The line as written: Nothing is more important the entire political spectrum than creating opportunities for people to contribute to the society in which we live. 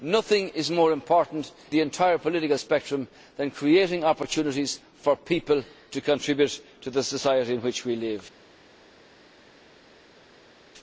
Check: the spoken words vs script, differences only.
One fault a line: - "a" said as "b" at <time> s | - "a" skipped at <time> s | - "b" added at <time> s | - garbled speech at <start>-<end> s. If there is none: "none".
none